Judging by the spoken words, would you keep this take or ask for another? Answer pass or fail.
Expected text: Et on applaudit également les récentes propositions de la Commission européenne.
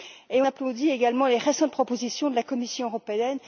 fail